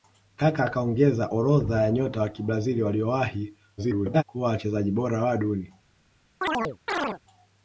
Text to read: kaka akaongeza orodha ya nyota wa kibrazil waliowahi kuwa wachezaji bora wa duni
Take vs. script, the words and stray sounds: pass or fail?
fail